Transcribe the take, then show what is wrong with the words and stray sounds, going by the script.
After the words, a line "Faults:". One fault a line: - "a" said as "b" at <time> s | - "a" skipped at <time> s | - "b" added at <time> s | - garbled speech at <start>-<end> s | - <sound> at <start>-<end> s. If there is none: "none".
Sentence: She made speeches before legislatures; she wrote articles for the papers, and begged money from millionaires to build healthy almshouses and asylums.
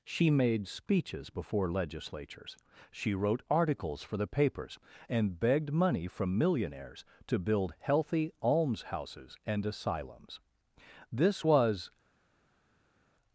She made speeches before legislatures; she wrote articles for the papers, and begged money from millionaires to build healthy almshouses and asylums. This was
Faults:
- "This was" added at 11.1 s